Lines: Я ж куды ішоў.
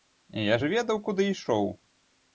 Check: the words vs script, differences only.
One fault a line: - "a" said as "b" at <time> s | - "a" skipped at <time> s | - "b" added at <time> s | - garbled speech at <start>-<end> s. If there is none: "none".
- "ведаў" added at 0.7 s